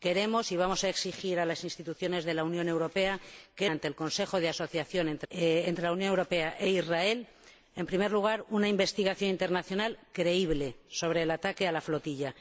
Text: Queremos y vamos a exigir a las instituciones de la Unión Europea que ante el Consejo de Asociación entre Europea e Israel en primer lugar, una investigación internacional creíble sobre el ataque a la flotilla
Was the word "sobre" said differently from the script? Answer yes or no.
no